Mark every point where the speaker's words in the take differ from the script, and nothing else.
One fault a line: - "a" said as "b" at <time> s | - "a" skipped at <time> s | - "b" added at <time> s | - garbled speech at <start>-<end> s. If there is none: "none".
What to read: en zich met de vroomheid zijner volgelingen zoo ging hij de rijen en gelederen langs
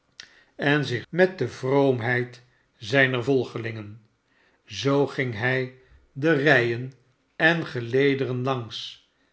none